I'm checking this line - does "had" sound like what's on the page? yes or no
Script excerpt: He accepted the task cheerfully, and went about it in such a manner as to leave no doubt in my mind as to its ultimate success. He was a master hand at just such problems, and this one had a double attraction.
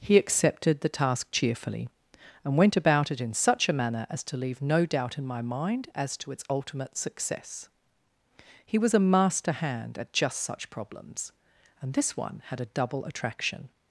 yes